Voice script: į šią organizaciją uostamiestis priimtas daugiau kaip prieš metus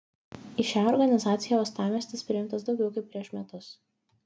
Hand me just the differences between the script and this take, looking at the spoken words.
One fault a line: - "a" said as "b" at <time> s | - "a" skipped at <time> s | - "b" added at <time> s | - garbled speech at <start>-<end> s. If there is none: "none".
none